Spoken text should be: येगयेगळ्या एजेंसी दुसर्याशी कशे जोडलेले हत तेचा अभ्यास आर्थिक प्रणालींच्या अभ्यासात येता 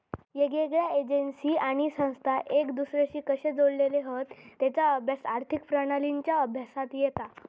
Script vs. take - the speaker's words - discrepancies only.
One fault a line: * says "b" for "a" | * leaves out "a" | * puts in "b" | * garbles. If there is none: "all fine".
* puts in "आणि संस्था एक"